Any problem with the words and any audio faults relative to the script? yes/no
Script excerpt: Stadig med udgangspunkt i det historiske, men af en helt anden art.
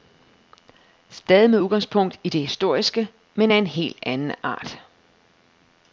no